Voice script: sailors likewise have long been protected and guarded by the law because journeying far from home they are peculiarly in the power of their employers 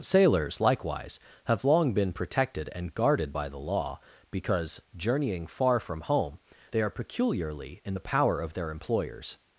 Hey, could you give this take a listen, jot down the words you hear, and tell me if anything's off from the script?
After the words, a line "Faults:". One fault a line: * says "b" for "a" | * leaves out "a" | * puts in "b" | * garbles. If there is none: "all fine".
sailors likewise have long been protected and guarded by the law because journeying far from home they are peculiarly in the power of their employers
Faults:
all fine